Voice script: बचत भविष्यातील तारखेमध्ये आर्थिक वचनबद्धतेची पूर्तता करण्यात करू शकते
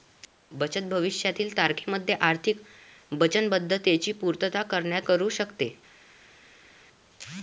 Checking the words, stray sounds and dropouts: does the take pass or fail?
pass